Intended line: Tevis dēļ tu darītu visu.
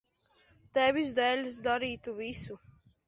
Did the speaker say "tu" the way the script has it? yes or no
no